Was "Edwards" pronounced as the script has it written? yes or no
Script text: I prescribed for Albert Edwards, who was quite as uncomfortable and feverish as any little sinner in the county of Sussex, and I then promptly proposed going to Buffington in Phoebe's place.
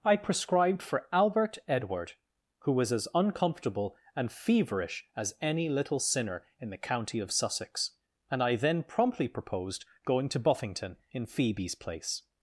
no